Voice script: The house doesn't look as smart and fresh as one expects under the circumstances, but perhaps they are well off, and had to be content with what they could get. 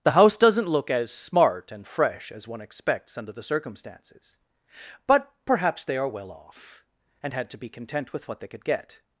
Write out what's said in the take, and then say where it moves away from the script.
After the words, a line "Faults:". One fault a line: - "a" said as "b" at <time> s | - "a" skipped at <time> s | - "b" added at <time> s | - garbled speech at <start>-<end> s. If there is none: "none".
The house doesn't look as smart and fresh as one expects under the circumstances, but perhaps they are well off, and had to be content with what they could get.
Faults:
none